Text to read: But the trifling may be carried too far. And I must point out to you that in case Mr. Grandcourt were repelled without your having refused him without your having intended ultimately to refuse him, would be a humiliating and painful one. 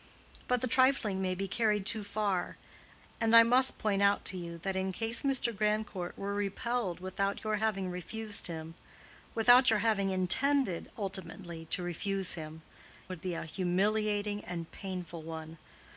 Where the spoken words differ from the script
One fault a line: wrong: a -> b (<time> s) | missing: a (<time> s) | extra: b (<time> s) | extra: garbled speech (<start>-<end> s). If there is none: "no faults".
no faults